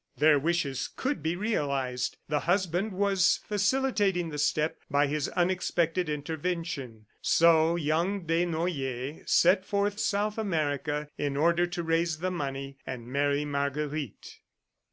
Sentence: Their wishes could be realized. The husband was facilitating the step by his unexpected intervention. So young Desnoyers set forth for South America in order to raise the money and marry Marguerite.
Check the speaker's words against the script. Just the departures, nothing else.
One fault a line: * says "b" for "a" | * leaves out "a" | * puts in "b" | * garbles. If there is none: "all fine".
* leaves out "for"